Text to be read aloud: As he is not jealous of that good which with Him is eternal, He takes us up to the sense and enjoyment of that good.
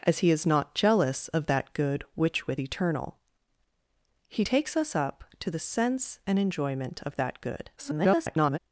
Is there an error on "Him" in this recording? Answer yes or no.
yes